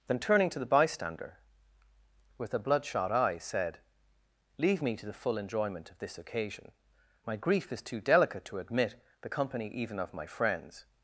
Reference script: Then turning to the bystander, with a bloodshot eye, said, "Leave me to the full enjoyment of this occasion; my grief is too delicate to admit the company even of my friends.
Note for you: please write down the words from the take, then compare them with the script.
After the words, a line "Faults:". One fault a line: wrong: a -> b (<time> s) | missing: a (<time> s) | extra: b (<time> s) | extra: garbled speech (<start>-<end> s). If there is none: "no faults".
Then turning to the bystander, with a bloodshot eye, said, "Leave me to the full enjoyment of this occasion; my grief is too delicate to admit the company even of my friends.
Faults:
no faults